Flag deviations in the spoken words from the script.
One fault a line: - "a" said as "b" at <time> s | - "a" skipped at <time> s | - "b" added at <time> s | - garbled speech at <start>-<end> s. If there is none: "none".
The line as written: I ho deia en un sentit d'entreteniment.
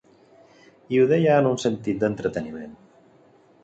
none